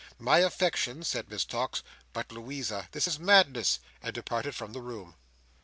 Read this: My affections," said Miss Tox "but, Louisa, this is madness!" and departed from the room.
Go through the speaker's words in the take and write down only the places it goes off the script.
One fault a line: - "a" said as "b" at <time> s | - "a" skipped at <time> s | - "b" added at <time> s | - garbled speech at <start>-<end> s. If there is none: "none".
none